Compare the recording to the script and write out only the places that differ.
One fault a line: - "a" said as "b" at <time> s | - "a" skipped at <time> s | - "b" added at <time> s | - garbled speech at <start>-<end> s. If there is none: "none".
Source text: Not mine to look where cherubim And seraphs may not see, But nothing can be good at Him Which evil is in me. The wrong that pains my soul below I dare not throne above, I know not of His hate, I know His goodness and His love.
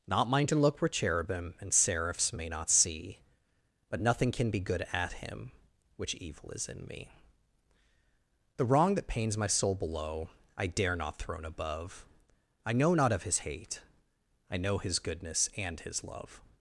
none